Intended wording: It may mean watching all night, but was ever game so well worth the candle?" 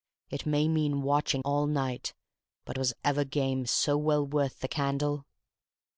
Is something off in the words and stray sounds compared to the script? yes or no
no